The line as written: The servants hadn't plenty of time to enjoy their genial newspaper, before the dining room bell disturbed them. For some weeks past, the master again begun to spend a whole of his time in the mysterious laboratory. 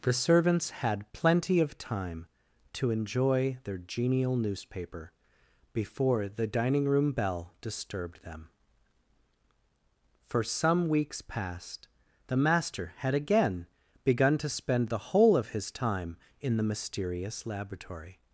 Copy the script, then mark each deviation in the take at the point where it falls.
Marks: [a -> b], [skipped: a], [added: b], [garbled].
The servants [hadn't -> had] plenty of time to enjoy their genial newspaper, before the dining room bell disturbed them. For some weeks past, the master [added: had] again begun to spend [a -> the] whole of his time in the mysterious laboratory.